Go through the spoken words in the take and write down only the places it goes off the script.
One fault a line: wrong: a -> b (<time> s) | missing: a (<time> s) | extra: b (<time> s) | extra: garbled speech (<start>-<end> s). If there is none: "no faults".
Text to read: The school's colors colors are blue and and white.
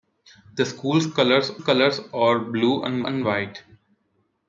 no faults